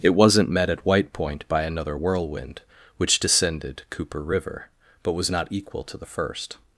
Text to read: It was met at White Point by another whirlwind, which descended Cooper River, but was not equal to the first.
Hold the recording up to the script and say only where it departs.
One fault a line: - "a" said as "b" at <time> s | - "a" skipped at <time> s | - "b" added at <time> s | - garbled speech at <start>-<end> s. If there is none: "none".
- "was" said as "wasn't" at 0.1 s